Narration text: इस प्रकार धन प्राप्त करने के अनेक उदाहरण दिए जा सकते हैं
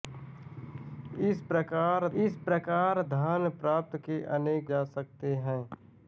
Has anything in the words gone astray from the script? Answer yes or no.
yes